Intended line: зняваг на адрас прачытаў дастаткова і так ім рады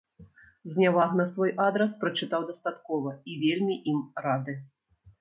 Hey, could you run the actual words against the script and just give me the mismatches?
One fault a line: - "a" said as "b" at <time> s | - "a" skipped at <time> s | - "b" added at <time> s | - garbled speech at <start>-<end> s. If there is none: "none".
- "свой" added at 1.3 s
- "так" said as "вельмі" at 3.4 s